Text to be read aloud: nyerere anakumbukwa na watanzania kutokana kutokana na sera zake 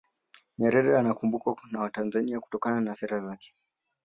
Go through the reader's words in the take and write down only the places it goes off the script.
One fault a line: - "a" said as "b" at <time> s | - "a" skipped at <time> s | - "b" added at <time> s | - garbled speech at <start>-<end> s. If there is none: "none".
- "kutokana" skipped at 2.8 s